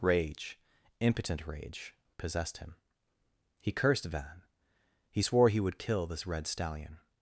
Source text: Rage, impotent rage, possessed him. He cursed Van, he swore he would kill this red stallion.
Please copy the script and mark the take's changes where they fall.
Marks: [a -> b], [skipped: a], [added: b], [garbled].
Rage, impotent rage, possessed him. He cursed Van, he swore he would kill this red stallion.